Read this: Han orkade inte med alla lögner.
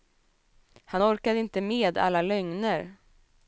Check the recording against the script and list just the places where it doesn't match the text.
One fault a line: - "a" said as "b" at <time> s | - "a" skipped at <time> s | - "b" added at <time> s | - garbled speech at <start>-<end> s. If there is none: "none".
none